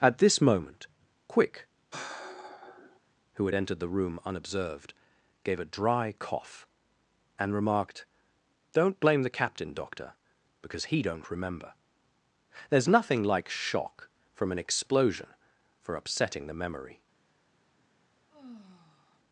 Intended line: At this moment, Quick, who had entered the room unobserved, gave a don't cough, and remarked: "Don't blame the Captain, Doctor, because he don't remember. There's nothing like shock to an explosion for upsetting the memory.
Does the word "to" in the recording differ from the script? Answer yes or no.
yes